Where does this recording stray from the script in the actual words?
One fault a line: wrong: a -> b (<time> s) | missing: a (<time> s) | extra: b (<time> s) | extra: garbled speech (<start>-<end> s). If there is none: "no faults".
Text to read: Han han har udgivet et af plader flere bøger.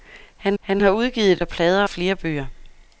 no faults